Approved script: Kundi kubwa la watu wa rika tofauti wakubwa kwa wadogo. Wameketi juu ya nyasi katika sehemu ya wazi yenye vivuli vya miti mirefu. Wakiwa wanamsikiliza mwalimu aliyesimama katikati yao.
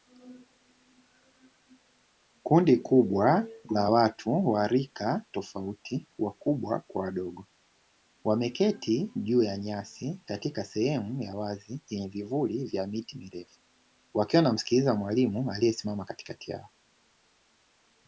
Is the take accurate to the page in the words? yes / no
yes